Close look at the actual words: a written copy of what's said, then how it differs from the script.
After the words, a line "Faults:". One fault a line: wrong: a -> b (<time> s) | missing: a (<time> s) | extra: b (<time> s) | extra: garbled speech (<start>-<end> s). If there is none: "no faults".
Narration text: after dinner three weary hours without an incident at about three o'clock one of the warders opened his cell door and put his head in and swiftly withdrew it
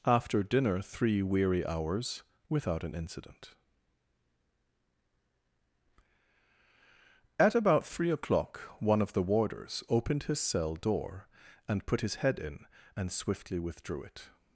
after dinner three weary hours without an incident at about three o'clock one of the warders opened his cell door and put his head in and swiftly withdrew it
Faults:
no faults